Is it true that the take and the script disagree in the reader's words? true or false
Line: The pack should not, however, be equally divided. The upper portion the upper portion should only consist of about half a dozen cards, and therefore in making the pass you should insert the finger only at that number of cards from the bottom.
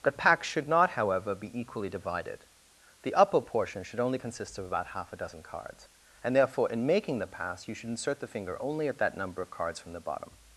true